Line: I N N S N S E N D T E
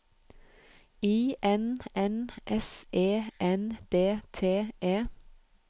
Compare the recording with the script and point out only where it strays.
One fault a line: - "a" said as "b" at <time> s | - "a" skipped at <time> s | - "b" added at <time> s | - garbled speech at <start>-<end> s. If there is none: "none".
- "N S" skipped at 2.8 s